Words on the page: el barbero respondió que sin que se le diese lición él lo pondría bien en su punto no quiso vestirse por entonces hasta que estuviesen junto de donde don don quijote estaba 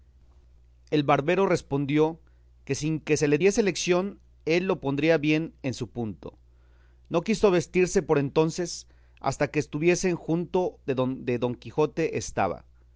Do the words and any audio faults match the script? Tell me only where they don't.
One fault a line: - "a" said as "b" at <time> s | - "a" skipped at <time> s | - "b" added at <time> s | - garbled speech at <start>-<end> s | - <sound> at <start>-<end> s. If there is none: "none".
- "don" skipped at 11.5 s